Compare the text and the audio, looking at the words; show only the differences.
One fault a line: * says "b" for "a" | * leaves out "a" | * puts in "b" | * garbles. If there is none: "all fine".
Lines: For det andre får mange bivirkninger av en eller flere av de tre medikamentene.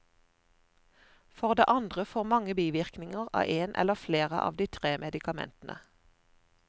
all fine